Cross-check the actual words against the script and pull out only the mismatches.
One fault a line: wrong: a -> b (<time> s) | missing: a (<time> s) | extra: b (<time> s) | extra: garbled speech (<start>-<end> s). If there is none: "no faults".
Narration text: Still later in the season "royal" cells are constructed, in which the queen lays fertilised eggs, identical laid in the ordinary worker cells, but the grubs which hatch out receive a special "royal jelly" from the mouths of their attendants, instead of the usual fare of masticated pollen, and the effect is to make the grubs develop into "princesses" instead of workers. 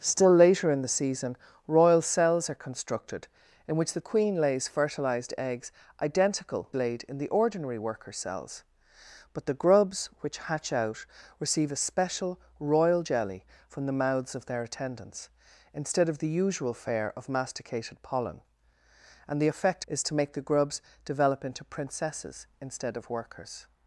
no faults